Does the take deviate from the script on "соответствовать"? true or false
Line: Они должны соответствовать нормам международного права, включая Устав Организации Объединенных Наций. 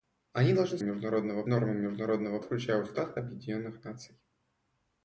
true